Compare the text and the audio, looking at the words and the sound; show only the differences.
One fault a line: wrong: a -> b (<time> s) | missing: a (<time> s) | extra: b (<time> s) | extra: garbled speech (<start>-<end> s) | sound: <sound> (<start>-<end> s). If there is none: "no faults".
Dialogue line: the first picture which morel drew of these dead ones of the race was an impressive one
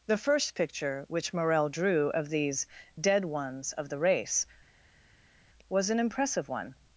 no faults